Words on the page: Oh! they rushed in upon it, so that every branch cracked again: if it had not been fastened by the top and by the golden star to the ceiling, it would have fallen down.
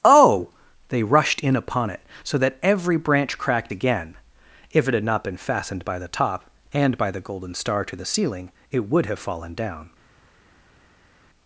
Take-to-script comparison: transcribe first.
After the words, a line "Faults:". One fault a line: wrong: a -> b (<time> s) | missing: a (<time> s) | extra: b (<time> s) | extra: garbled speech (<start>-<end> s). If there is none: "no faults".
Oh! they rushed in upon it, so that every branch cracked again: if it had not been fastened by the top and by the golden star to the ceiling, it would have fallen down.
Faults:
no faults